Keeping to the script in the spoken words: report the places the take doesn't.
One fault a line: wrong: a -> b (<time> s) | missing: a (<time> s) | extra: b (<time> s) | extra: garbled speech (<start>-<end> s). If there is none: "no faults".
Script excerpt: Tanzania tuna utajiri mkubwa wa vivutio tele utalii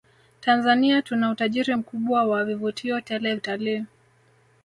no faults